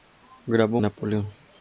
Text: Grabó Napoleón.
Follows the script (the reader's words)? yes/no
yes